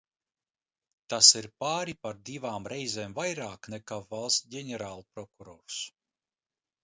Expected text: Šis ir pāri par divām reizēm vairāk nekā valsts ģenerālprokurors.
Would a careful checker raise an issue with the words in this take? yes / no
yes